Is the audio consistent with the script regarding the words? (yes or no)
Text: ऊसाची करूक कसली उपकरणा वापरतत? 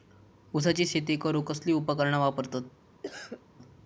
no